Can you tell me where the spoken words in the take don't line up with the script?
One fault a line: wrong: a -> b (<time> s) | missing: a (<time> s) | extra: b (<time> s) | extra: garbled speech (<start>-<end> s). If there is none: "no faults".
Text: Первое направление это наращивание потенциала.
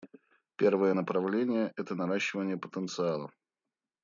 no faults